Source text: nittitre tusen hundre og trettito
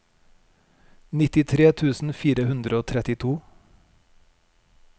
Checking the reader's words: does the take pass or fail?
fail